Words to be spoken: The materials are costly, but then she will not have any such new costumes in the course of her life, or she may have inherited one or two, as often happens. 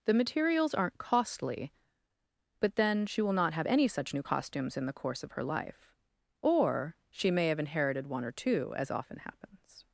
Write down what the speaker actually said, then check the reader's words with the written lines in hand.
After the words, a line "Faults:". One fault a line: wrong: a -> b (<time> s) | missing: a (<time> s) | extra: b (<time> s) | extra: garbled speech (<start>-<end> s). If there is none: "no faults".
The materials aren't costly, but then she will not have any such new costumes in the course of her life, or she may have inherited one or two, as often happens.
Faults:
wrong: are -> aren't (0.7 s)